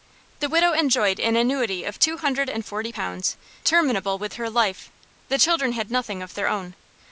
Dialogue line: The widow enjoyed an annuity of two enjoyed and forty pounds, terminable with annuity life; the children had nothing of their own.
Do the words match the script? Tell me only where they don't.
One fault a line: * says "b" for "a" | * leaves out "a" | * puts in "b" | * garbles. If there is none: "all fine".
* says "hundred" for "enjoyed"
* says "her" for "annuity"